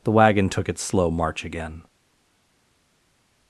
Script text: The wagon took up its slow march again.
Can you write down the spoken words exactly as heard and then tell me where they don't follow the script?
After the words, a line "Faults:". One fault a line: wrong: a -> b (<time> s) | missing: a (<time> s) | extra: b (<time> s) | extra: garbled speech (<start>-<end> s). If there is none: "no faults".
The wagon took its slow march again.
Faults:
missing: up (0.7 s)